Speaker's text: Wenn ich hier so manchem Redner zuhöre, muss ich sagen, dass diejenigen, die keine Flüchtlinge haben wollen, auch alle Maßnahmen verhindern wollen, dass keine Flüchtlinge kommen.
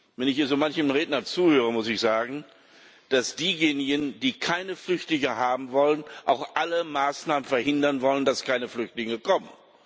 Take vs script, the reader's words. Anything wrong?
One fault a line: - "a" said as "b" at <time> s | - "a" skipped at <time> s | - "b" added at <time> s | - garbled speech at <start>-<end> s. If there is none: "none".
none